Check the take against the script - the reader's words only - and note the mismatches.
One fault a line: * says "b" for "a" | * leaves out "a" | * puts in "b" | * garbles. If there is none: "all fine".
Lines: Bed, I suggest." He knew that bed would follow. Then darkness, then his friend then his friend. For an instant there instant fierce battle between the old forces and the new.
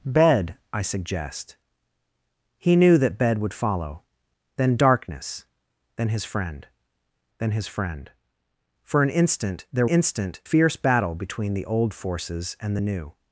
all fine